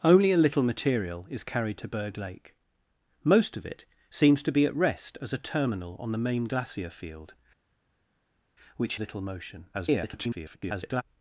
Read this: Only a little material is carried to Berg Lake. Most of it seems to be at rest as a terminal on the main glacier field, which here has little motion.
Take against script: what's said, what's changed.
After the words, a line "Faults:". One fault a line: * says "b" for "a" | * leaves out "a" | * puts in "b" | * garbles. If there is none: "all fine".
Only a little material is carried to Berg Lake. Most of it seems to be at rest as a terminal on the main glacier field, which little motion. [garbled]
Faults:
* leaves out "here has"
* garbles